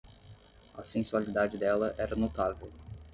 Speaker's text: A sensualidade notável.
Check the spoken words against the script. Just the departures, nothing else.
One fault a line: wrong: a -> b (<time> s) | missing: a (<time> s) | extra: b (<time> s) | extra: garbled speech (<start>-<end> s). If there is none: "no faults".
extra: dela era (1.6 s)